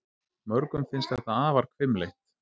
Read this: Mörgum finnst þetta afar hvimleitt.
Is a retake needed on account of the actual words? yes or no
no